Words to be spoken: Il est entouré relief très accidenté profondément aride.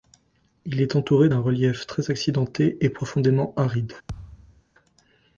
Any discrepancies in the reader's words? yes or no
yes